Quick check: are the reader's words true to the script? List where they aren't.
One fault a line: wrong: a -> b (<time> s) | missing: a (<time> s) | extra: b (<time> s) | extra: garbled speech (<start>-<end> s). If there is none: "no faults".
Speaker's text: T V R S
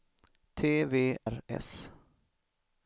no faults